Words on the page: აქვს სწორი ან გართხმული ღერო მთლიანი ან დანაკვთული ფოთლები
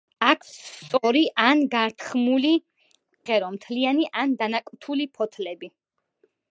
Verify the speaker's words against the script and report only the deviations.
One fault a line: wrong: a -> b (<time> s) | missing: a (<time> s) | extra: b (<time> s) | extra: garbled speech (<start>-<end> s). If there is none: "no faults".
no faults